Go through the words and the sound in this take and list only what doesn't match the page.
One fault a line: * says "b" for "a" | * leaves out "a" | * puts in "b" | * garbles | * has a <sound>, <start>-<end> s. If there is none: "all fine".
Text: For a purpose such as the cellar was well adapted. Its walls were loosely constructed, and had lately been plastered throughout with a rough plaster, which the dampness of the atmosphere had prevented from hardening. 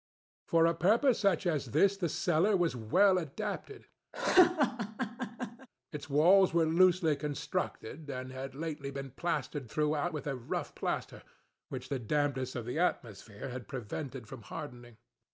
* puts in "this"
* has a laugh, 4.1-5.7 s